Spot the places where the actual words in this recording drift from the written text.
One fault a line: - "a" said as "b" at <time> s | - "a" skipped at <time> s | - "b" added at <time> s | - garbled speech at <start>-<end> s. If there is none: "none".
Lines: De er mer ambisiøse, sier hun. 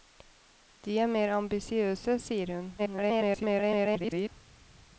- garbled speech at 2.8-4.3 s